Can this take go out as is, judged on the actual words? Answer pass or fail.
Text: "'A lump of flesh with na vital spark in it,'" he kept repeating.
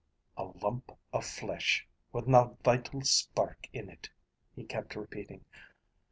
pass